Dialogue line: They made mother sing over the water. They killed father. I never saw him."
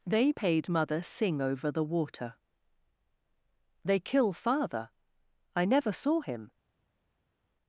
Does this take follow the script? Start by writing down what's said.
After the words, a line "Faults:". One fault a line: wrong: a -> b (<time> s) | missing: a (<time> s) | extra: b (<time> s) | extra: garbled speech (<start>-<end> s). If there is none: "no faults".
They paid mother sing over the water. They kill father. I never saw him."
Faults:
wrong: made -> paid (0.3 s)
wrong: killed -> kill (4.0 s)